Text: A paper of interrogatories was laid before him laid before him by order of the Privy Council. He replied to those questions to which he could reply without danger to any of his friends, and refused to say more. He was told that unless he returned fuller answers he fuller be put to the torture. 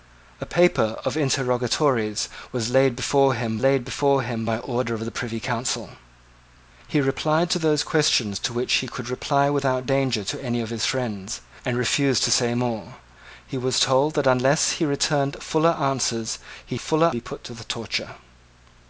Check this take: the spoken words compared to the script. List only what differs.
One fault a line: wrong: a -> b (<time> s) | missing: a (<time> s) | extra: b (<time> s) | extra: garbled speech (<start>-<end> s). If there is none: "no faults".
no faults